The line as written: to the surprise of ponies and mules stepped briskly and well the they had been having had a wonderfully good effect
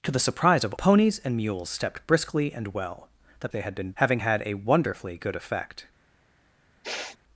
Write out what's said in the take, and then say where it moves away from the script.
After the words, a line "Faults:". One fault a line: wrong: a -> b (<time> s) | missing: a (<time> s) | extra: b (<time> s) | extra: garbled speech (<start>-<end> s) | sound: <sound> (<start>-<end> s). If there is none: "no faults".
to the surprise of ponies and mules stepped briskly and well the they had been having had a wonderfully good effect
Faults:
sound: sniff (6.8-7.2 s)